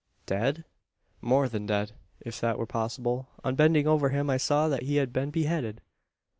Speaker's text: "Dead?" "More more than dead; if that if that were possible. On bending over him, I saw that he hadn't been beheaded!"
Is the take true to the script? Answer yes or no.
no